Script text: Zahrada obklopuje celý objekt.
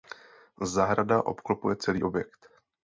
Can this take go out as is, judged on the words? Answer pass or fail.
pass